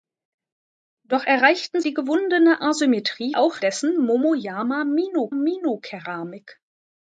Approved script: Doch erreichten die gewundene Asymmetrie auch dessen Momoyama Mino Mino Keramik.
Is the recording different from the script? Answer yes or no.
no